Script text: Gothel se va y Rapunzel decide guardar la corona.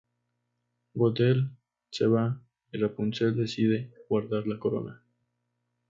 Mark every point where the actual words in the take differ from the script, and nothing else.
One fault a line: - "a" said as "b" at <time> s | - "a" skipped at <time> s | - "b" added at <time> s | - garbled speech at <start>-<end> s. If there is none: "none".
none